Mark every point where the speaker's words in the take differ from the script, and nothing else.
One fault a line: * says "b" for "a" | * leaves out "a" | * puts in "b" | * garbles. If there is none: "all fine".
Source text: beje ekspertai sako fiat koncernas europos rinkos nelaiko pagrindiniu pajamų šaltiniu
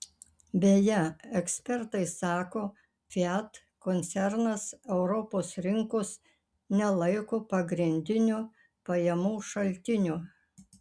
all fine